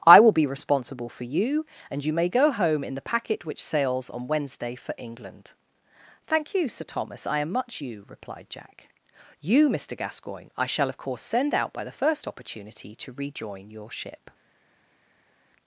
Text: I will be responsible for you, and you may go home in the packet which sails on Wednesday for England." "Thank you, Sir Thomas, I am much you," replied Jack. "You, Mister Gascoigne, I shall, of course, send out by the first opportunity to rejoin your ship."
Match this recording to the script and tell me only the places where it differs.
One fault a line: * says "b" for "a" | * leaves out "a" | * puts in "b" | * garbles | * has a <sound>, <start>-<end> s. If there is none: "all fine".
all fine